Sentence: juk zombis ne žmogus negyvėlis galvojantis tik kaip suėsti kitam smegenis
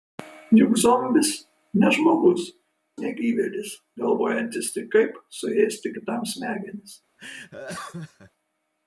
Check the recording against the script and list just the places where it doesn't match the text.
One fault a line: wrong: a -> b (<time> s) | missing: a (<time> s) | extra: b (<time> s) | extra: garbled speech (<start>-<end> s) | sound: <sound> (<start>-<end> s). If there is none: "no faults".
sound: laugh (7.2-8.3 s)